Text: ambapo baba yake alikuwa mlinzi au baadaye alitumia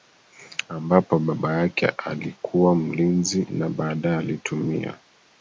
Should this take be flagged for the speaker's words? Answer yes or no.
yes